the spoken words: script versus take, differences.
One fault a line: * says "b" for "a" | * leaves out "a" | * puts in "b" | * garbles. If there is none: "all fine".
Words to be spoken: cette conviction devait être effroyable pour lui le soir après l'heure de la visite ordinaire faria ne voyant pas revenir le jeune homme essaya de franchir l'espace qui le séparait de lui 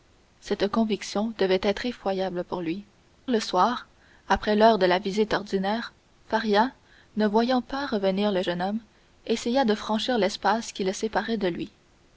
all fine